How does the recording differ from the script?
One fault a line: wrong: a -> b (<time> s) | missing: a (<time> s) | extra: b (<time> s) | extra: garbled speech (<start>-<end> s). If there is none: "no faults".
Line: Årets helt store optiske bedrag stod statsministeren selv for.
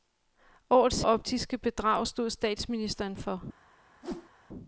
missing: helt store (1.0 s)
missing: selv (3.2 s)